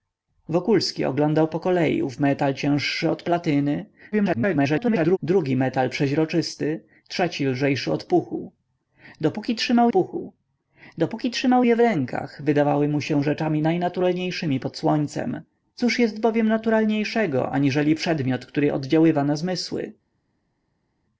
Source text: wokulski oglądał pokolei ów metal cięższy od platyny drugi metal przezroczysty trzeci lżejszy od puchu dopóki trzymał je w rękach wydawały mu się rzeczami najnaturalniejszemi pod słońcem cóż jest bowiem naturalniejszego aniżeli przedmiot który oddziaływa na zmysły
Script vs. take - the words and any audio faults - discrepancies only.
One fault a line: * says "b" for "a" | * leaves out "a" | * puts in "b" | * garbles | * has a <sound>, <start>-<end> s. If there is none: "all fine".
* garbles
* puts in "puchu dopóki trzymał"